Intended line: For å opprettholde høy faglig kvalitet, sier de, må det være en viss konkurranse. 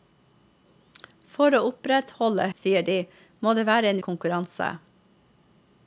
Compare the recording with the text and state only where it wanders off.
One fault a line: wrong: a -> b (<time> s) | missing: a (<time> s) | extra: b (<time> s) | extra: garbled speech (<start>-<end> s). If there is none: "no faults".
missing: høy faglig kvalitet (2.5 s)
missing: viss (4.0 s)